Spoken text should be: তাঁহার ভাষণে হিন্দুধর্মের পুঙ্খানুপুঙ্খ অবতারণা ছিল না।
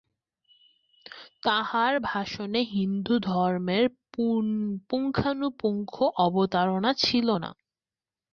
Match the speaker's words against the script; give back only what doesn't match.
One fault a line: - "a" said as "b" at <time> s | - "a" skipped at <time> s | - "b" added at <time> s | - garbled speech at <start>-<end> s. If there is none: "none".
none